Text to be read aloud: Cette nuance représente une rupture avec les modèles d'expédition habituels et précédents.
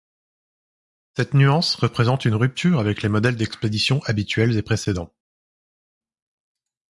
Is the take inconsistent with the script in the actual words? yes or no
no